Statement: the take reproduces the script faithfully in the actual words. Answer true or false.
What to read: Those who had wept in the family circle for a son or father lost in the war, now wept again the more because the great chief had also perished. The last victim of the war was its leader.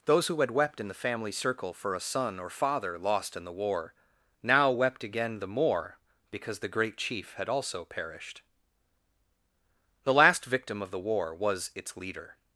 true